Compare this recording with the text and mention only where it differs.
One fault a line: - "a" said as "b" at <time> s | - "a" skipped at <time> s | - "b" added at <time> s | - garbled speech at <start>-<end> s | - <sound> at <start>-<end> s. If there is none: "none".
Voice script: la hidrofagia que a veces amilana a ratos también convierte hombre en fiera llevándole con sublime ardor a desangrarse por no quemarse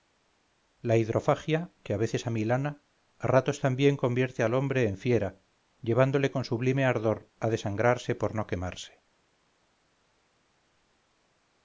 - "al" added at 4.4 s